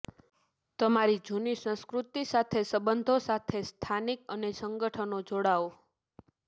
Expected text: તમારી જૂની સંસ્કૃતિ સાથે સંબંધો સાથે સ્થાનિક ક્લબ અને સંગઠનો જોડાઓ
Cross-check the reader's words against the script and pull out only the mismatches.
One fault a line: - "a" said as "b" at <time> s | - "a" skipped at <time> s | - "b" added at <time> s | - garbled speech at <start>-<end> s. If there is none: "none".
- "ક્લબ" skipped at 4.2 s